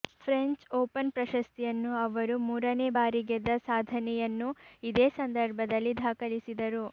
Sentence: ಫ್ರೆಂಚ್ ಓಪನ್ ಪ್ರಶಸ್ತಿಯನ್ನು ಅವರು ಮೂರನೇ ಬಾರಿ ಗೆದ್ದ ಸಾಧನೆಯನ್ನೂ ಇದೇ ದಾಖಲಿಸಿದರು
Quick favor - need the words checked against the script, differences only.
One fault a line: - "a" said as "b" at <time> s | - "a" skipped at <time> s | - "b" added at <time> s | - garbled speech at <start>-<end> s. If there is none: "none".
- "ಸಂದರ್ಭದಲ್ಲಿ" added at 5.2 s